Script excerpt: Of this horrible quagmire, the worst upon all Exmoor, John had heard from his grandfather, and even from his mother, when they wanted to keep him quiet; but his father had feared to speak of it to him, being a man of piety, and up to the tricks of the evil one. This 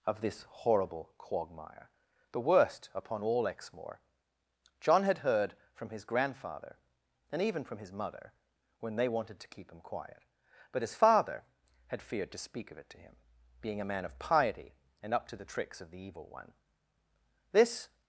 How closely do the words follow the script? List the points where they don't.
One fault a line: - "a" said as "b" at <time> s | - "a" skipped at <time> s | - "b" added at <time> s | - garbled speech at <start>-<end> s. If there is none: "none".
none